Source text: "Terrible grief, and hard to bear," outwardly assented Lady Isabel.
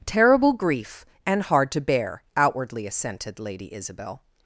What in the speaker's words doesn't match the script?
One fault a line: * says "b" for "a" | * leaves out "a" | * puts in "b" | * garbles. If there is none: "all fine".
all fine